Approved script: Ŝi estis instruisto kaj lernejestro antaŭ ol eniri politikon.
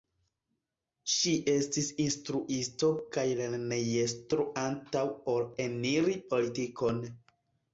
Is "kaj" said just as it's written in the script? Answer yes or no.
yes